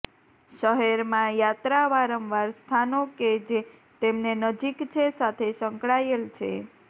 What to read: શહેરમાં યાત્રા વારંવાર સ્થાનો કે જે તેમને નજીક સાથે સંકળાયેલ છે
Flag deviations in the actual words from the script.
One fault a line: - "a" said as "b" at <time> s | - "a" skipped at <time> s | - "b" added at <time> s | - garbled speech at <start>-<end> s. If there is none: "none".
- "છે" added at 4.9 s